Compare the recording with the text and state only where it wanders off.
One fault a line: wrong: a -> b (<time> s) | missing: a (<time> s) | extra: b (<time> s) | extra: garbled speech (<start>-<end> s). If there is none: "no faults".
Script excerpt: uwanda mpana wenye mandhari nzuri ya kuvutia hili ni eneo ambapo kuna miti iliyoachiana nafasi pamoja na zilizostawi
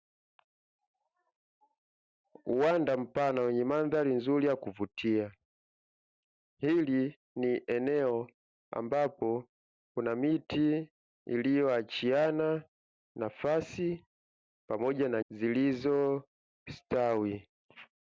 no faults